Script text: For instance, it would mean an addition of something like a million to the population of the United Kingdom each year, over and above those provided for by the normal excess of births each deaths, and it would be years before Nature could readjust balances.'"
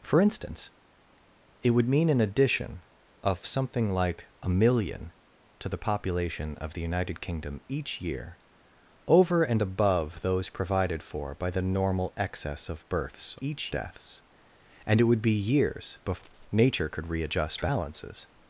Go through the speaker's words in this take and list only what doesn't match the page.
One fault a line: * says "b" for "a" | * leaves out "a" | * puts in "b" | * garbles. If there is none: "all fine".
all fine